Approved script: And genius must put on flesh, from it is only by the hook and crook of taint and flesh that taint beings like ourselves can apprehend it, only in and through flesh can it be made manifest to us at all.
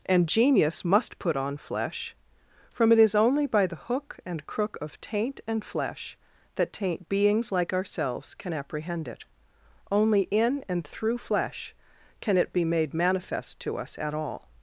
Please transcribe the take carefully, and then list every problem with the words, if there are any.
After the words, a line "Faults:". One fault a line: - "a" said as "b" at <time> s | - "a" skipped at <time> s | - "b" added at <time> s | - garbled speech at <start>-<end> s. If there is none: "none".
And genius must put on flesh, from it is only by the hook and crook of taint and flesh that taint beings like ourselves can apprehend it, only in and through flesh can it be made manifest to us at all.
Faults:
none